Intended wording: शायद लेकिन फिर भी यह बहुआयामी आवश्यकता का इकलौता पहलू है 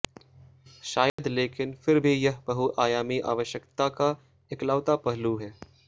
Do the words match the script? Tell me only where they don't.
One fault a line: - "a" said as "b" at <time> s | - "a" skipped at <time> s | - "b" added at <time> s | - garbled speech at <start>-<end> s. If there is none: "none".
none